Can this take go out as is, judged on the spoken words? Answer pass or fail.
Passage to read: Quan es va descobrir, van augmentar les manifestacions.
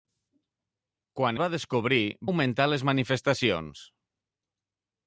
fail